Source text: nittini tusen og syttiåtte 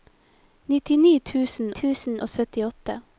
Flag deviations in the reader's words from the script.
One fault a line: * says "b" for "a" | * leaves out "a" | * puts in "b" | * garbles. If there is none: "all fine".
* puts in "tusen"